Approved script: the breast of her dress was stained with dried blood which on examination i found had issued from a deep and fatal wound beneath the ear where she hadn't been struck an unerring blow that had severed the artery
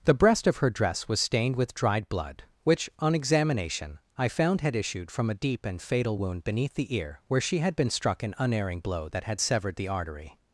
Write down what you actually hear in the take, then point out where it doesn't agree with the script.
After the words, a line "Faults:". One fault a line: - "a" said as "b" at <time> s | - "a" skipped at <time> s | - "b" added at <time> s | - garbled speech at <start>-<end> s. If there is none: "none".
the breast of her dress was stained with dried blood which on examination i found had issued from a deep and fatal wound beneath the ear where she had been struck an unerring blow that had severed the artery
Faults:
- "hadn't" said as "had" at 7.6 s